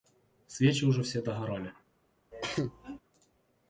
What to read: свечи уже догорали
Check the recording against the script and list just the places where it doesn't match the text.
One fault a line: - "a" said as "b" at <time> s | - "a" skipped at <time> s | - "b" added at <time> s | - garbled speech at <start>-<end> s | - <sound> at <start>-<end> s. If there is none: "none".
- "все" added at 1.0 s
- cough at 2.3-3.0 s